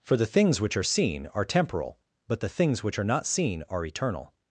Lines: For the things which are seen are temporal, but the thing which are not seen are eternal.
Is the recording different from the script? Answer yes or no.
yes